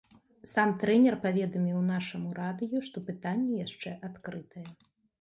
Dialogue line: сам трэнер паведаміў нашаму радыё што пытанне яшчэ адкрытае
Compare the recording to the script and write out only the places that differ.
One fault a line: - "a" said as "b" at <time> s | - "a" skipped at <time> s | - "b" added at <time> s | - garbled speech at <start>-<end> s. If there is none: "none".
none